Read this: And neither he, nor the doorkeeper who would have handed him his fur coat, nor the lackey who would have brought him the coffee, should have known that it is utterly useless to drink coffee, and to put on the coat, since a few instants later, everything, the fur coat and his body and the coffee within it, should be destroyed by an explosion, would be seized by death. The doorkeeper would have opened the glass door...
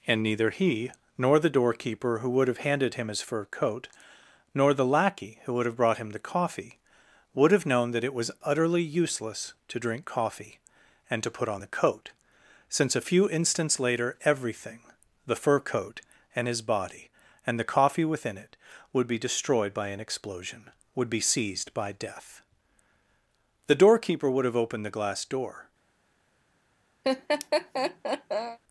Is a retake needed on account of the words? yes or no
yes